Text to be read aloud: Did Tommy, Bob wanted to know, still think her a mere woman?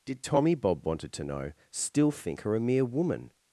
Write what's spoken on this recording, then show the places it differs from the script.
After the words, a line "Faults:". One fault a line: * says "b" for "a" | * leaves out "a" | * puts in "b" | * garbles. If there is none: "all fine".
Did Tommy, Bob wanted to know, still think her a mere woman?
Faults:
all fine